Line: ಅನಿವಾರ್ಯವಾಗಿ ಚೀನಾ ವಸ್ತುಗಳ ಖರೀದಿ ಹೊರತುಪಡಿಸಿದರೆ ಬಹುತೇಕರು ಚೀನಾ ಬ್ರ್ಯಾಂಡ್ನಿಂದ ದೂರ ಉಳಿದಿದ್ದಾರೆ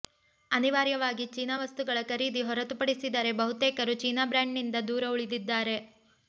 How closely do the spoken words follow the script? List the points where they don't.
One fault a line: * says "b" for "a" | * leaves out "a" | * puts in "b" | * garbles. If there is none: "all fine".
all fine